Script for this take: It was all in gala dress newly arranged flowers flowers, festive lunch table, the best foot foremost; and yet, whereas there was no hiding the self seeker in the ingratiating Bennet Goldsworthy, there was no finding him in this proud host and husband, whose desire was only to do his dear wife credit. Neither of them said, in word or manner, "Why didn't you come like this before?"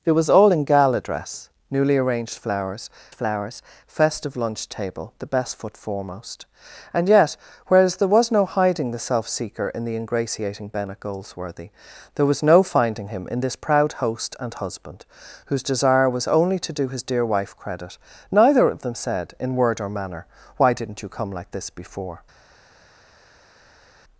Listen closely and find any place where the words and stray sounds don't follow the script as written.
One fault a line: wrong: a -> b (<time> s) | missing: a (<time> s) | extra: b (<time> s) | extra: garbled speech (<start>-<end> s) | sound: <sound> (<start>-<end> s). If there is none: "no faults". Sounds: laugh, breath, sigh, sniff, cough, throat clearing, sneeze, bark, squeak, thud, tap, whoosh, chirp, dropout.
no faults